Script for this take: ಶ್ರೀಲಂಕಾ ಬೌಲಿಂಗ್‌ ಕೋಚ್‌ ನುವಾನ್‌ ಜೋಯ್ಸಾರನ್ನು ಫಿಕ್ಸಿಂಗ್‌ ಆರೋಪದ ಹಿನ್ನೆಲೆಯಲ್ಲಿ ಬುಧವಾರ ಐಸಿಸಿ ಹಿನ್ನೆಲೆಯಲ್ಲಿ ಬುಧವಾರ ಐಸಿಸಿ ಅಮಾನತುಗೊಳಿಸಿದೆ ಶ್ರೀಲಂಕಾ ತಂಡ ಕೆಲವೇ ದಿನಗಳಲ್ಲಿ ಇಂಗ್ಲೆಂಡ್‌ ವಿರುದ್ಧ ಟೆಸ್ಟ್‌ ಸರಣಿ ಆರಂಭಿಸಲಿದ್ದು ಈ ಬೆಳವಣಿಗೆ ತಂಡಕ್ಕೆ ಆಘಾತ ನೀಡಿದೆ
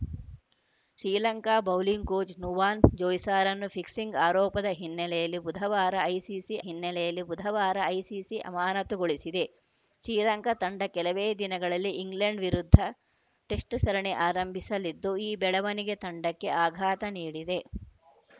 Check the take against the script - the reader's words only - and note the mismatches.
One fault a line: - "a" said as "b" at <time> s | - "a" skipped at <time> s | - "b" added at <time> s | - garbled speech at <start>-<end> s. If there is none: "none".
none